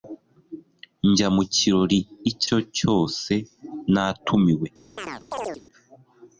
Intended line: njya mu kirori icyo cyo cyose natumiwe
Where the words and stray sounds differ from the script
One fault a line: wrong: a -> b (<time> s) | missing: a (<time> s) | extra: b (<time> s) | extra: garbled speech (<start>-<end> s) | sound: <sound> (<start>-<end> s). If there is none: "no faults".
sound: chirp (5.0-5.6 s)